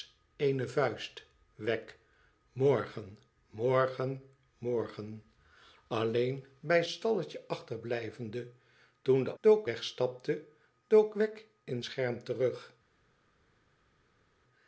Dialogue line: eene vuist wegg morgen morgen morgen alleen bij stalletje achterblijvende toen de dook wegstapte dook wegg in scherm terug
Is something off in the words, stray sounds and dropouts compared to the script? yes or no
no